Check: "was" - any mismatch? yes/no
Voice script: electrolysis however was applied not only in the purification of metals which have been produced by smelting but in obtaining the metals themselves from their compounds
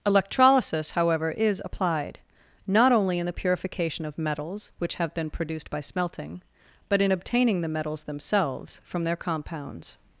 yes